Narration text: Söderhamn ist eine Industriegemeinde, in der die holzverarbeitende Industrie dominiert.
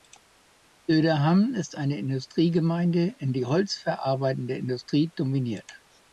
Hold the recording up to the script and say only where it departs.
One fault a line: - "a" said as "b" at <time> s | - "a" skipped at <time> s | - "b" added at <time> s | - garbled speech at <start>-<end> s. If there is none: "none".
- "der" skipped at 3.4 s